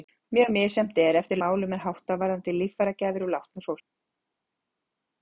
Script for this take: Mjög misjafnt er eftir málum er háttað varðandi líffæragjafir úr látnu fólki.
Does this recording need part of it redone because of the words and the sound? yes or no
no